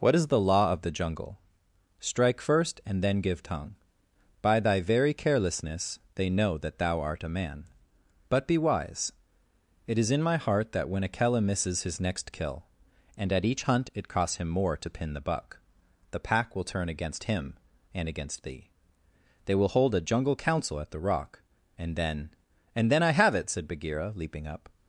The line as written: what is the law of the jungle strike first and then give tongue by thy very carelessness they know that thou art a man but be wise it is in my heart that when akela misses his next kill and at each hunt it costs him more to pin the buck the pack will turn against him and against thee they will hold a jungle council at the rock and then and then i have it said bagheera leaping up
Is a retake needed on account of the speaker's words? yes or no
no